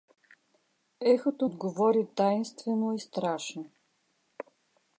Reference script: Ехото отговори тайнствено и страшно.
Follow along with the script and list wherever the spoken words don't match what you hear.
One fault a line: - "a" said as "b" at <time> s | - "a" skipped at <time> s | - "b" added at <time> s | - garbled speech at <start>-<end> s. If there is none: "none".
none